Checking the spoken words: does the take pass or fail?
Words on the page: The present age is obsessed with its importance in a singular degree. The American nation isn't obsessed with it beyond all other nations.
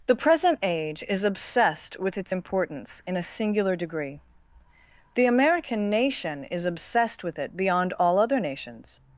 fail